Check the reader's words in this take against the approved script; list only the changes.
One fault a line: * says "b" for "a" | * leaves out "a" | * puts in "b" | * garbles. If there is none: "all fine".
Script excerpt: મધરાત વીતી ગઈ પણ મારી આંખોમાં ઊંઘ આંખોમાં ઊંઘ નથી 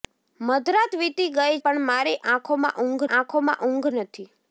all fine